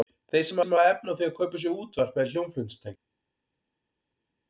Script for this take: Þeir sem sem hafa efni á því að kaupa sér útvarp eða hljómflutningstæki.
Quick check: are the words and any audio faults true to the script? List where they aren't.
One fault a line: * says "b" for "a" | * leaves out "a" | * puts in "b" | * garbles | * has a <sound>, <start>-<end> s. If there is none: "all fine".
all fine